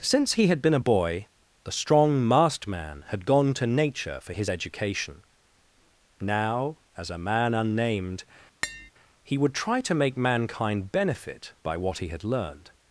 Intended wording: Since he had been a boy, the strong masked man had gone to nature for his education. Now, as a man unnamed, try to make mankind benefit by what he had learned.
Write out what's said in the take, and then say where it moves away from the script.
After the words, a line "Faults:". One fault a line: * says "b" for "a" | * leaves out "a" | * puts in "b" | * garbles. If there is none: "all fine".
Since he had been a boy, the strong masked man had gone to nature for his education. Now, as a man unnamed, he would try to make mankind benefit by what he had learned.
Faults:
* puts in "he would"